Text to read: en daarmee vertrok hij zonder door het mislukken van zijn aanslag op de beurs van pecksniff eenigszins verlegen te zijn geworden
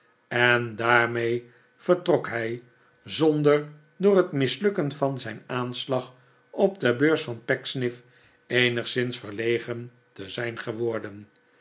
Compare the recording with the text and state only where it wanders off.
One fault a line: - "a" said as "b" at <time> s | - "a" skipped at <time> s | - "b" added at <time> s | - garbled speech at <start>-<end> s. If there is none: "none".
none